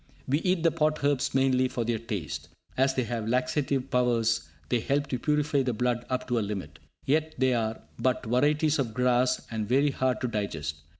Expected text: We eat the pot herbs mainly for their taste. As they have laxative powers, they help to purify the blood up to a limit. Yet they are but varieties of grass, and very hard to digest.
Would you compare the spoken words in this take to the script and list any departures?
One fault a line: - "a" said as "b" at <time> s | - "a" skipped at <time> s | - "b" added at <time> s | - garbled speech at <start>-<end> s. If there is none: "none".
none